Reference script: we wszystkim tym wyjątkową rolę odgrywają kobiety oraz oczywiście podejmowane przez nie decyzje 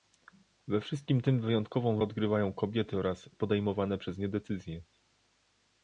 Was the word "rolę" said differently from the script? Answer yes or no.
yes